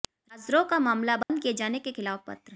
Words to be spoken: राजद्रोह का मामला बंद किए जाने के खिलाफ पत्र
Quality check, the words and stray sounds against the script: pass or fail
fail